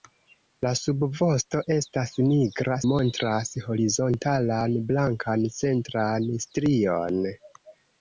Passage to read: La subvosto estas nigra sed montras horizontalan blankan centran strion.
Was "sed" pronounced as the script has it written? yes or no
no